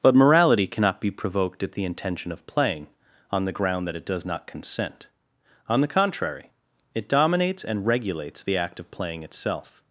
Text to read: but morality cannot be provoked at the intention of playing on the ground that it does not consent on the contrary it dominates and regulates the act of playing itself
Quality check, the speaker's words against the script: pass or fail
pass